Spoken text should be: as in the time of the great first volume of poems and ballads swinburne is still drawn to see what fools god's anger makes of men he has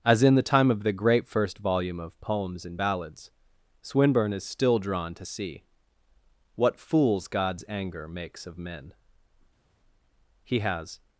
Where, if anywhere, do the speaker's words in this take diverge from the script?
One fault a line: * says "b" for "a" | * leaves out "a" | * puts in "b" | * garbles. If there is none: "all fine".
all fine